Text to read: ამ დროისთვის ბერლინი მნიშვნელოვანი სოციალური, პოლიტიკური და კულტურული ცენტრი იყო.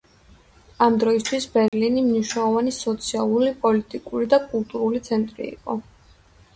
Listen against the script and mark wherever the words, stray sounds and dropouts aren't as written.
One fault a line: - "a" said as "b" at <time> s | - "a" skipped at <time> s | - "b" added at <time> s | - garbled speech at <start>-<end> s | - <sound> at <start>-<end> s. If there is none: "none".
- dropout at 1.7-1.7 s